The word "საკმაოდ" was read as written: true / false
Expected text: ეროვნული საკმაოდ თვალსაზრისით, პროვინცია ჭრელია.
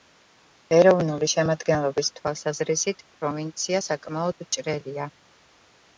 false